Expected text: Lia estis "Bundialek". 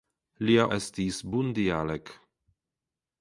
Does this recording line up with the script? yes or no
yes